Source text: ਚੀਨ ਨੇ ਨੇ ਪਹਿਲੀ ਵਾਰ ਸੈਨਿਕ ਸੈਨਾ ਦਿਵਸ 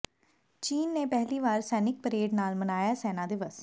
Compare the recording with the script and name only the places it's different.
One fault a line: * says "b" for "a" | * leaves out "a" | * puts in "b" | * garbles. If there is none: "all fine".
* leaves out "ਨੇ"
* puts in "ਪਰੇਡ ਨਾਲ ਮਨਾਇਆ"